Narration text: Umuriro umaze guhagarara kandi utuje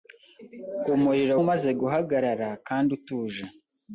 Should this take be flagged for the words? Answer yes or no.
no